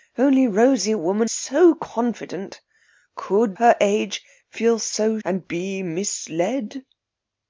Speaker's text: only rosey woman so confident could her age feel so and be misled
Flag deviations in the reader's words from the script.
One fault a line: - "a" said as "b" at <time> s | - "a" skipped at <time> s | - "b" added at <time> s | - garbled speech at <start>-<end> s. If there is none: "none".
none